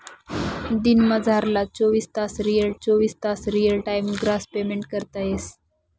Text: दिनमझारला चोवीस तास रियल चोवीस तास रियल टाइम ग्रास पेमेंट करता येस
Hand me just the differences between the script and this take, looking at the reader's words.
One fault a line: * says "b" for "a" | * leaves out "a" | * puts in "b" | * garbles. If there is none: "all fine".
all fine